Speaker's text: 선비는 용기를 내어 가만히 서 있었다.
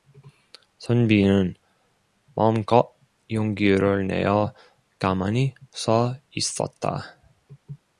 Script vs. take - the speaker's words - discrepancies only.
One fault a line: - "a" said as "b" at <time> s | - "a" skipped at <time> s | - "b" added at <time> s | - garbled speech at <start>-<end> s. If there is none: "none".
- "마음껏" added at 2.3 s